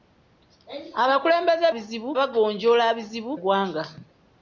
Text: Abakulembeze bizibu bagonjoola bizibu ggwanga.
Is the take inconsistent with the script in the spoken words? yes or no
no